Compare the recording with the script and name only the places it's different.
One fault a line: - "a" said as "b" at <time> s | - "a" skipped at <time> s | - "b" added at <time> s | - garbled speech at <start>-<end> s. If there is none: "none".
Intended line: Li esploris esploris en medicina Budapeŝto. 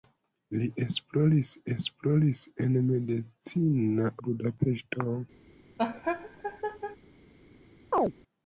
none